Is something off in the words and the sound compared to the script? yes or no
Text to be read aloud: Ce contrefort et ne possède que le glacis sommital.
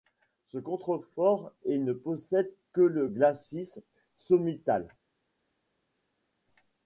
no